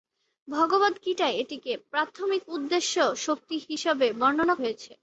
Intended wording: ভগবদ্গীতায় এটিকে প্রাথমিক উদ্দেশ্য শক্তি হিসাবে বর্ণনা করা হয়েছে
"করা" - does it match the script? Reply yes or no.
no